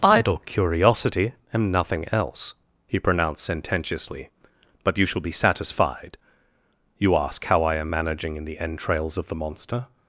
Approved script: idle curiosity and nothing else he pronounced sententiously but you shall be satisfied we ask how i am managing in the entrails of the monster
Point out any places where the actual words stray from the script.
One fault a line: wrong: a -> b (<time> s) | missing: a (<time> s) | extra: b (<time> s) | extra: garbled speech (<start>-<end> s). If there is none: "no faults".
wrong: we -> you (7.0 s)